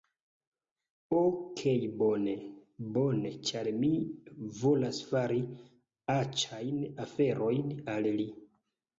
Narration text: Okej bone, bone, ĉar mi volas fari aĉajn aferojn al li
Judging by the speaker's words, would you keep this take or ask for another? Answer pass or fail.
pass